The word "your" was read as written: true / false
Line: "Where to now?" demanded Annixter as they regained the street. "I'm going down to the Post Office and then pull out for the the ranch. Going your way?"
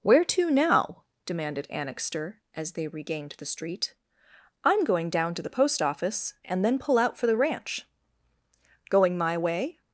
false